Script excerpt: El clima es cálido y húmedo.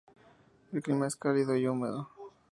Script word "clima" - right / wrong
right